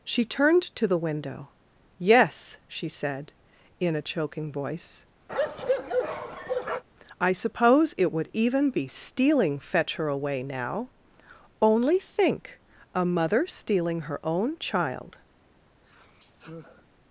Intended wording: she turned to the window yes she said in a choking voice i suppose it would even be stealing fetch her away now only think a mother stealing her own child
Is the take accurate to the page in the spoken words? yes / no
yes